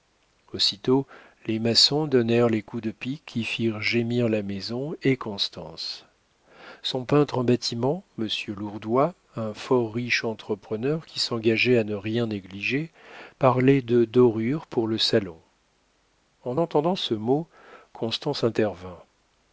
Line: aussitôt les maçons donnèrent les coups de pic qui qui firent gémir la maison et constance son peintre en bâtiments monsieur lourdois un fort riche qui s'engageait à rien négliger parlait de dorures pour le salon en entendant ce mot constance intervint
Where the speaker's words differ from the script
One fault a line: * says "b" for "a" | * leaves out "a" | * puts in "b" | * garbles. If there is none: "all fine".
* leaves out "qui"
* puts in "entrepreneur"
* puts in "ne"